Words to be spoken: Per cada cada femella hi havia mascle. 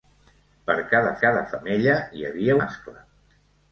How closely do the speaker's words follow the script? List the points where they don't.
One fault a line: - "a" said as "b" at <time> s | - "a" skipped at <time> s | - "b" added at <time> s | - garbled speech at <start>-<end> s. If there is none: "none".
none